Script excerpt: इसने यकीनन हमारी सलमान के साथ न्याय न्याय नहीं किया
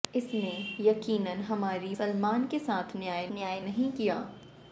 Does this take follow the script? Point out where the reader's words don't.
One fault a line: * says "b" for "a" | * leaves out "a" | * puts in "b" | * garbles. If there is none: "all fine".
all fine